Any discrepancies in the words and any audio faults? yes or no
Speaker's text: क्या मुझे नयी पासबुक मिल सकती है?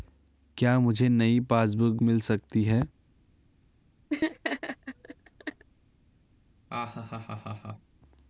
yes